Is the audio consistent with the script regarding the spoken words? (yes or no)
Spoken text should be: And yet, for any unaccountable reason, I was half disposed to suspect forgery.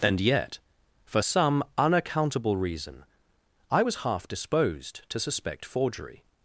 no